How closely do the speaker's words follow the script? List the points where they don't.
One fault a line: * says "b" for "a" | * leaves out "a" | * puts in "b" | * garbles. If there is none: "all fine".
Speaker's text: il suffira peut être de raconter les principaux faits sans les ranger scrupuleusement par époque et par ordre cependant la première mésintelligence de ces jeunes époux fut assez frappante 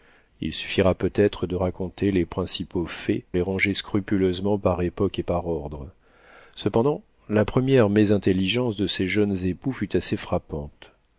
* leaves out "sans"